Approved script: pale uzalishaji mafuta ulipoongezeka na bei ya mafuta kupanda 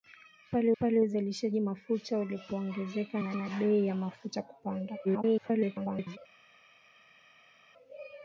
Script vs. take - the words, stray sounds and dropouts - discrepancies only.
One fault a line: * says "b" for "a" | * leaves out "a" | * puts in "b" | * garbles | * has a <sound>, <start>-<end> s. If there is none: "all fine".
* puts in "pale"
* puts in "na"
* garbles